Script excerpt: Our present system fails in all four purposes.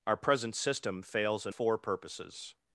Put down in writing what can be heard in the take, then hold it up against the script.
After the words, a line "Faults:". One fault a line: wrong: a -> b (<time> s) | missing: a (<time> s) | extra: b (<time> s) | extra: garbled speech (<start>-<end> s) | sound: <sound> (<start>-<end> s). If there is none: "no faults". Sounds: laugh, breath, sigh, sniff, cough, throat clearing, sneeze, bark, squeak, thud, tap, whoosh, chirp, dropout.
Our present system fails in four purposes.
Faults:
missing: all (1.5 s)